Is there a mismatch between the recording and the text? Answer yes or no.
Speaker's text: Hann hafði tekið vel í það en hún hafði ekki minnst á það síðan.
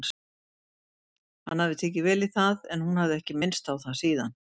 no